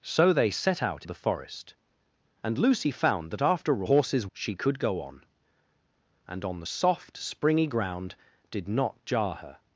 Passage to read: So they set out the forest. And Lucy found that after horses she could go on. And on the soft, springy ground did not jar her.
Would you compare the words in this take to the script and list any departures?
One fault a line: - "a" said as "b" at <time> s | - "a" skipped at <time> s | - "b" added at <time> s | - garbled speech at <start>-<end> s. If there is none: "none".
none